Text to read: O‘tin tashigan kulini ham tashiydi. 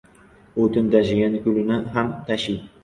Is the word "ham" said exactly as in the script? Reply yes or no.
yes